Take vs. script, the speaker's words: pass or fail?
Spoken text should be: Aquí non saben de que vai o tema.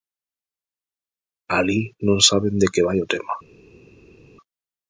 fail